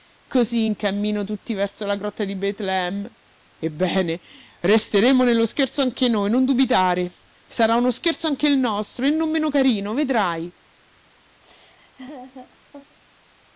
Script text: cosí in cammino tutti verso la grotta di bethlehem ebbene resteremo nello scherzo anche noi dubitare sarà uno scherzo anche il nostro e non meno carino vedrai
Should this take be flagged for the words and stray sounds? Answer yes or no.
yes